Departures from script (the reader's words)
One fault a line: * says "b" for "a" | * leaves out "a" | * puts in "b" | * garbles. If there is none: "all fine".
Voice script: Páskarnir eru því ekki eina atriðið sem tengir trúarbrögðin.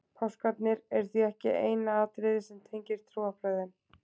all fine